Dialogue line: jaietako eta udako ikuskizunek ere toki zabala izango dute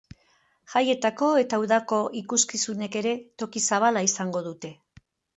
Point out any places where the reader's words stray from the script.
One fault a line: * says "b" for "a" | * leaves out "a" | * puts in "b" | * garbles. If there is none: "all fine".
all fine